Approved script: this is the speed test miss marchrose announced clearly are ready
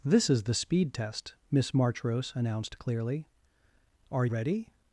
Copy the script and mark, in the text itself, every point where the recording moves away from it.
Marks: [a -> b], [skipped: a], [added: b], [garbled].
this is the speed test miss marchrose announced clearly are ready